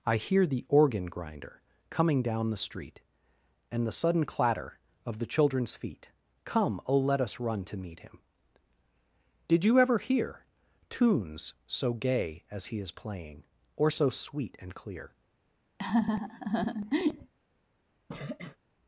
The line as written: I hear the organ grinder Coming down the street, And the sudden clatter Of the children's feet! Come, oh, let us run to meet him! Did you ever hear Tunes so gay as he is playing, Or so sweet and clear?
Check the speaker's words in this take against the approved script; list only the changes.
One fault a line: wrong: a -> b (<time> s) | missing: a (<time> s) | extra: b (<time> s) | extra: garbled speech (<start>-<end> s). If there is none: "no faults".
no faults